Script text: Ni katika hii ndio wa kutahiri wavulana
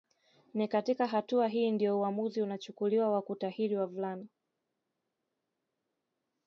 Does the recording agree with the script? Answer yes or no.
no